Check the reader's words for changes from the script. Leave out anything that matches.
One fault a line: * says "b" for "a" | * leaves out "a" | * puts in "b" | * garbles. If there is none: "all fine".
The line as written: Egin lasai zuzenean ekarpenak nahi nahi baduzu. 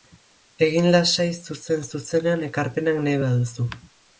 * puts in "zuzen"
* leaves out "nahi"